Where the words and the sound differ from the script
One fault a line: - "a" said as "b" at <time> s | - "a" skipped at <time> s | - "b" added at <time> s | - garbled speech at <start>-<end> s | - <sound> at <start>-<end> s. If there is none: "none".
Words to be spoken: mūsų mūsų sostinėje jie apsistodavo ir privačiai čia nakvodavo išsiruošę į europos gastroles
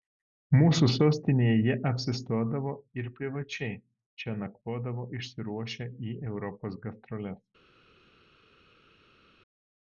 - "mūsų" skipped at 0.9 s